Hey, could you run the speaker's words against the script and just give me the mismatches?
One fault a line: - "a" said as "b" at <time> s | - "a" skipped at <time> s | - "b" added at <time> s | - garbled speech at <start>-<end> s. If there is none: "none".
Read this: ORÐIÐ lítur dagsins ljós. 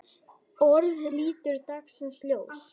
none